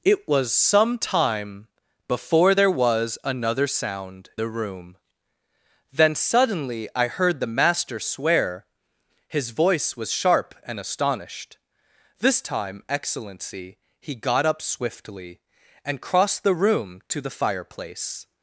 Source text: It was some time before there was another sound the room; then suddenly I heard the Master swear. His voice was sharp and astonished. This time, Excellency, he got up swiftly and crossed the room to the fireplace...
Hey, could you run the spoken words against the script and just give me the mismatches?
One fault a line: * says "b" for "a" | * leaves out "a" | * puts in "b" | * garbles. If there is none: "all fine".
all fine